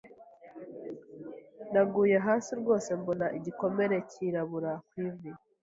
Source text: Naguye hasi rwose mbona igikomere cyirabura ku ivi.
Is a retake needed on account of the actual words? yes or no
no